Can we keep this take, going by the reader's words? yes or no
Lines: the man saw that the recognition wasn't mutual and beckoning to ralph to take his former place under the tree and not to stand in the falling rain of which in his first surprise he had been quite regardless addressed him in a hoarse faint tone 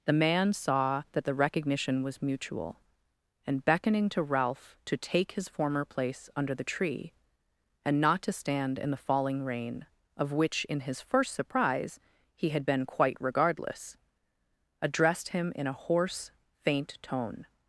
no